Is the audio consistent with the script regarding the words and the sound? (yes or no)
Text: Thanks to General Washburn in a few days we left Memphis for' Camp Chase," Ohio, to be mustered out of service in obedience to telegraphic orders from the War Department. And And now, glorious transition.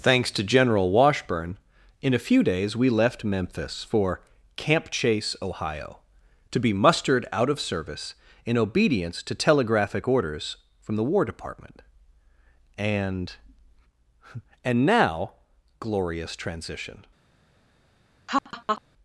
no